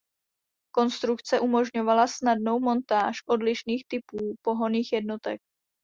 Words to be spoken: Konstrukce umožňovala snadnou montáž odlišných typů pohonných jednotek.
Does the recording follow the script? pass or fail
pass